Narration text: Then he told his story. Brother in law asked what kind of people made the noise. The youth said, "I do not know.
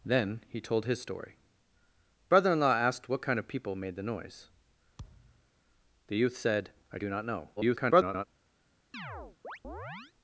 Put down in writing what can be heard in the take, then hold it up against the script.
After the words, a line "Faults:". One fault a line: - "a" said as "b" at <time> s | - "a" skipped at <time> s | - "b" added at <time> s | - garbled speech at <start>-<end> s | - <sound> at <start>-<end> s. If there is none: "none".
Then he told his story. Brother in law asked what kind of people made the noise. The youth said, "I do not know. [garbled]
Faults:
- thud at 5.0-5.5 s
- garbled speech at 7.6-8.3 s
- chirp at 8.9-10.1 s